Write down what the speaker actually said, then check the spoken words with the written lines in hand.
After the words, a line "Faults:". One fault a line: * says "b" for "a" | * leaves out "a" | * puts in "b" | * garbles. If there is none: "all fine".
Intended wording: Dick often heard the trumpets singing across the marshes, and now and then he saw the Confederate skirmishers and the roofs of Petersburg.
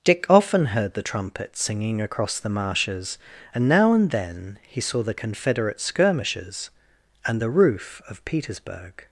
Dick often heard the trumpets singing across the marshes, and now and then he saw the Confederate skirmishers and the roof of Petersburg.
Faults:
* says "roof" for "roofs"